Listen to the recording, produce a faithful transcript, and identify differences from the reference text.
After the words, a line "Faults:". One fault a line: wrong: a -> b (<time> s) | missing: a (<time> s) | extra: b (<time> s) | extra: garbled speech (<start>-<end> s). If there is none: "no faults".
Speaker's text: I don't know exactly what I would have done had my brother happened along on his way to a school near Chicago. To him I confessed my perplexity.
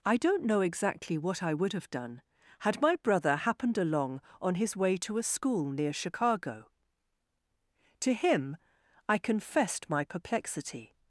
I don't know exactly what I would have done had my brother happened along on his way to a school near Chicago. To him I confessed my perplexity.
Faults:
no faults